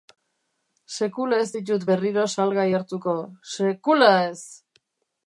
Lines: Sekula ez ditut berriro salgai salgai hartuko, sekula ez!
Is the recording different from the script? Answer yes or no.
yes